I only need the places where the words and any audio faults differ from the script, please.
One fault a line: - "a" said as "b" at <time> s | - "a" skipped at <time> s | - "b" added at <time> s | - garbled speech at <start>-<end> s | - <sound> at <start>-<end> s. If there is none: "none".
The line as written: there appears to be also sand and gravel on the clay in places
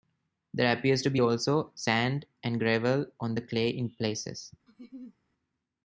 - laugh at 4.7-5.2 s